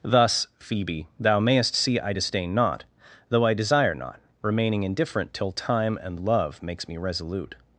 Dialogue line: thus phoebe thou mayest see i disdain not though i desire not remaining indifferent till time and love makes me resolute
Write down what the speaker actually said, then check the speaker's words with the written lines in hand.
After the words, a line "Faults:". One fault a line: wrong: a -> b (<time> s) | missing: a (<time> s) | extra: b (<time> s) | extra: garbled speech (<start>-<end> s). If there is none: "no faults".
thus phoebe thou mayest see i disdain not though i desire not remaining indifferent till time and love makes me resolute
Faults:
no faults